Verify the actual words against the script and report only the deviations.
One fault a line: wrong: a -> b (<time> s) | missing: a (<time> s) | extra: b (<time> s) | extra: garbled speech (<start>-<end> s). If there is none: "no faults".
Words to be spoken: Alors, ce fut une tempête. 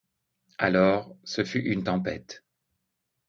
no faults